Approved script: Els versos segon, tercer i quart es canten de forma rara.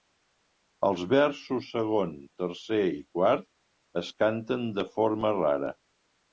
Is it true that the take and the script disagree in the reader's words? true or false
false